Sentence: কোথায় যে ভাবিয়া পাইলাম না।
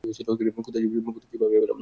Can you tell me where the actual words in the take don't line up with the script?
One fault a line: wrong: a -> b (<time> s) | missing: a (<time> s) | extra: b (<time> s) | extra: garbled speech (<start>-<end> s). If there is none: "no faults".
no faults